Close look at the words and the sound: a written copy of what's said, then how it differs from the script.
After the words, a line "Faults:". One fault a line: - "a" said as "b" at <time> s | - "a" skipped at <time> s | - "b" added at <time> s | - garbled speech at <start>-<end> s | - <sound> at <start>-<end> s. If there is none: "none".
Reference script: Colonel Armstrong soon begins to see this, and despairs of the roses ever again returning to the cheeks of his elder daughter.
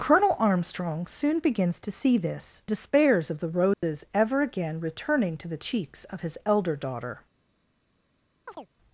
Colonel Armstrong soon begins to see this, despairs of the roses ever again returning to the cheeks of his elder daughter.
Faults:
- "and" skipped at 2.6 s
- dropout at 3.7-3.8 s
- chirp at 8.5-8.7 s